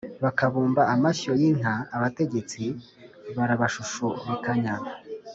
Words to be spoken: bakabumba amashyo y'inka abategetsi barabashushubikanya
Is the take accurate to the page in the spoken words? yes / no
yes